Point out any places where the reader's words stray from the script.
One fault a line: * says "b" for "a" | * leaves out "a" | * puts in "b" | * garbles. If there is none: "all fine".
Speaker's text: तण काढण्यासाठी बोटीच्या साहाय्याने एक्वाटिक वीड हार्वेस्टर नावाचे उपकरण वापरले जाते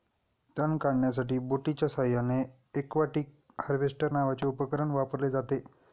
* leaves out "वीड"